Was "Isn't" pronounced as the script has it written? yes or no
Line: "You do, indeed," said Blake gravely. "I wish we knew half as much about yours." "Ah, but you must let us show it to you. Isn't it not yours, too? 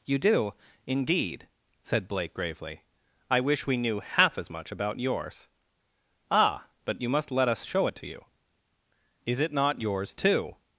no